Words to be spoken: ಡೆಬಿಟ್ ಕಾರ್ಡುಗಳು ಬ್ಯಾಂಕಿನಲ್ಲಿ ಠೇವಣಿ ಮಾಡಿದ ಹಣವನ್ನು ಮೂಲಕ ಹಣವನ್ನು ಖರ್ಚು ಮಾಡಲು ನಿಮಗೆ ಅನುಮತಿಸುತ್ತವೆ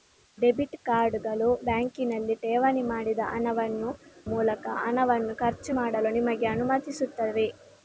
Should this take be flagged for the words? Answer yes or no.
no